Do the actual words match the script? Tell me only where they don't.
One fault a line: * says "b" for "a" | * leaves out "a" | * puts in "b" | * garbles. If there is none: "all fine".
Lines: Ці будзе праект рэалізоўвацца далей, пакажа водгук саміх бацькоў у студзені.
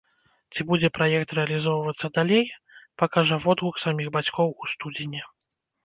all fine